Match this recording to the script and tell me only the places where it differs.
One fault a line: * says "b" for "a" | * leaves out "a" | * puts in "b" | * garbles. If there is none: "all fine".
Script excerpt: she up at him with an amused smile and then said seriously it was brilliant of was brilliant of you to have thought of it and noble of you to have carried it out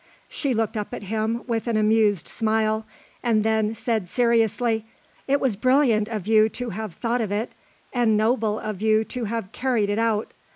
* puts in "looked"
* leaves out "was brilliant of"